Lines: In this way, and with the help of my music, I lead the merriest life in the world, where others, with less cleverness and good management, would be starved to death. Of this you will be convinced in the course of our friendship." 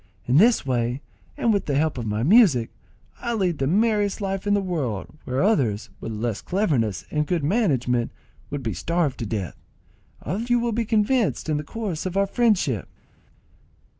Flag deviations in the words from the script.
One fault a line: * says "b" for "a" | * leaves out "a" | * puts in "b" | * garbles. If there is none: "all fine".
* leaves out "this"